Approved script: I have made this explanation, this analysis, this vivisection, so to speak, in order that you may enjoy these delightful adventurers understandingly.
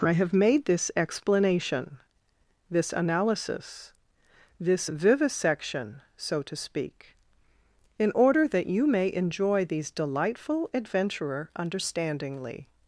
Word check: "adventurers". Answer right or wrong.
wrong